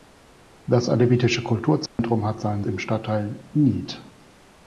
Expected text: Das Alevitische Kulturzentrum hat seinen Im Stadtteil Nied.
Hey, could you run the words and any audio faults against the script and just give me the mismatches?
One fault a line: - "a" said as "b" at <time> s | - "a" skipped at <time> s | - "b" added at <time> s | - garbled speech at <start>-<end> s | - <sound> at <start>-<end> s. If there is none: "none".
- dropout at 1.9-2.0 s